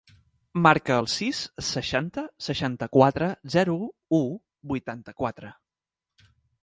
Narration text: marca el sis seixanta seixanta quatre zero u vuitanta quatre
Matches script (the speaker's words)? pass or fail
pass